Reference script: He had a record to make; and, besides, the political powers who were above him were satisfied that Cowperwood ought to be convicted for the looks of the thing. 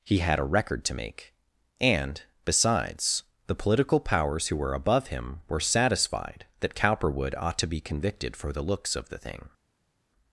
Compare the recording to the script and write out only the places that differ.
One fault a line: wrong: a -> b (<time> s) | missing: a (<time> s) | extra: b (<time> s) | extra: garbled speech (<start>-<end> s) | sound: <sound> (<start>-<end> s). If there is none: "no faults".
no faults